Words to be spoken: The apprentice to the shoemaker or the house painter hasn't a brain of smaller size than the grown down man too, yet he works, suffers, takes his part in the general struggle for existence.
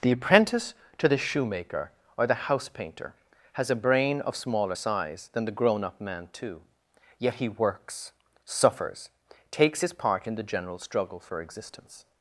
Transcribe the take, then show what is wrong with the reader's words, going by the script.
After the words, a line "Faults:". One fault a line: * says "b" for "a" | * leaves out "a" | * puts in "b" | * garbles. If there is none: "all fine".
The apprentice to the shoemaker or the house painter has a brain of smaller size than the grown up man too, yet he works, suffers, takes his part in the general struggle for existence.
Faults:
* says "has" for "hasn't"
* says "up" for "down"